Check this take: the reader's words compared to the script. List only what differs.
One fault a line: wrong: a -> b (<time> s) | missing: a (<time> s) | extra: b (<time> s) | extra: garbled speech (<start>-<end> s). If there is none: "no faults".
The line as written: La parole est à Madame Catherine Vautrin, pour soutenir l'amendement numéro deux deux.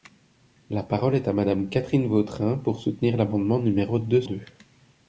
no faults